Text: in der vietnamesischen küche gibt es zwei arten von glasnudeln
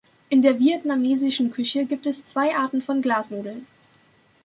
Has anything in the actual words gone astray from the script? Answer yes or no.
no